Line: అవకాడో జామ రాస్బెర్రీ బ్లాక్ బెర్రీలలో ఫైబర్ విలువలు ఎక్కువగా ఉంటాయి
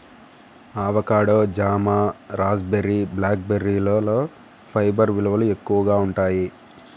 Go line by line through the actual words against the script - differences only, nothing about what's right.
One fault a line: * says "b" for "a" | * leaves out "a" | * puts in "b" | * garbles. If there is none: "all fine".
all fine